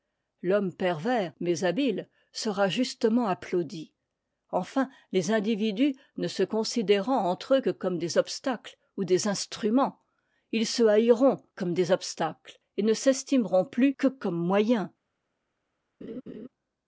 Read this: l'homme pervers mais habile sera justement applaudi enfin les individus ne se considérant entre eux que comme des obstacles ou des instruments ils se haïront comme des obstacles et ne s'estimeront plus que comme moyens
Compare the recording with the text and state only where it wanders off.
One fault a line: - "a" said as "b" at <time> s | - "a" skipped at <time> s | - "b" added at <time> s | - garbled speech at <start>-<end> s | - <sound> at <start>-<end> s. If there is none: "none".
- laugh at 16.0-16.5 s